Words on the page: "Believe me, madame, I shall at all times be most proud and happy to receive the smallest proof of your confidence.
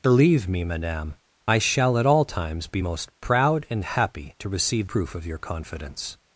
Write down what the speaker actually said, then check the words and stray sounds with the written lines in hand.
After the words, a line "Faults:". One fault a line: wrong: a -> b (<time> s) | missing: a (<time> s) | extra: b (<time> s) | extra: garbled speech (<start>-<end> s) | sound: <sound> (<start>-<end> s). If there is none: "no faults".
"Believe me, madame, I shall at all times be most proud and happy to receive proof of your confidence.
Faults:
missing: the smallest (4.9 s)